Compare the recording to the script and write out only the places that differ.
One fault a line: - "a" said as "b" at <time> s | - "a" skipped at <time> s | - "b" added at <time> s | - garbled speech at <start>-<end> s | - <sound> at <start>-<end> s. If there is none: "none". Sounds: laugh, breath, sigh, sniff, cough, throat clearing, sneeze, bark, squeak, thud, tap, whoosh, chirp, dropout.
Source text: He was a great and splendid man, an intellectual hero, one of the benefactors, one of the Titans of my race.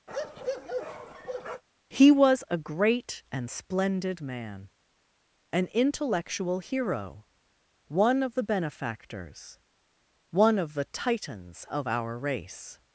- bark at 0.1-1.6 s
- "my" said as "our" at 11.9 s